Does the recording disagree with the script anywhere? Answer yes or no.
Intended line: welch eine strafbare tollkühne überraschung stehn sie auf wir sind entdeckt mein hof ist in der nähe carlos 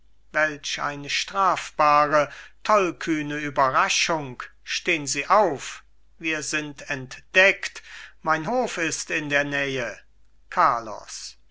no